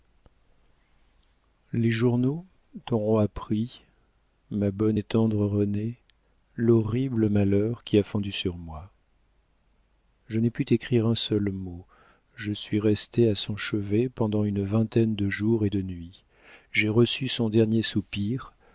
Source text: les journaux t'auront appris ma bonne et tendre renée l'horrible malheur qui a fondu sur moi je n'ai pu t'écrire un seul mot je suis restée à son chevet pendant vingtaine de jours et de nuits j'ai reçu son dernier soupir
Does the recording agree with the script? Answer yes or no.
no